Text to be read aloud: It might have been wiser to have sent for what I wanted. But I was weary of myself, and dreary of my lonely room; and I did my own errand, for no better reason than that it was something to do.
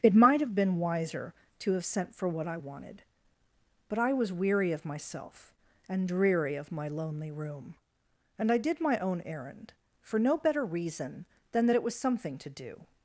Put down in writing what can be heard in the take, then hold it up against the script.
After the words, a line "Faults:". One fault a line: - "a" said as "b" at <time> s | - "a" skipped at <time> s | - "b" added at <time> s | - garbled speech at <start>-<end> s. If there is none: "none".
It might have been wiser to have sent for what I wanted. But I was weary of myself, and dreary of my lonely room; and I did my own errand, for no better reason than that it was something to do.
Faults:
none